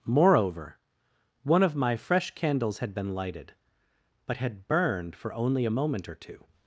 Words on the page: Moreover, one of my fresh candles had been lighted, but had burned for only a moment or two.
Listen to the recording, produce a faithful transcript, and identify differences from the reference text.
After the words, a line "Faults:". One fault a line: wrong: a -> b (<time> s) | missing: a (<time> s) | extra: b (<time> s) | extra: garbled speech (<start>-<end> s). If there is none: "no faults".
Moreover, one of my fresh candles had been lighted, but had burned for only a moment or two.
Faults:
no faults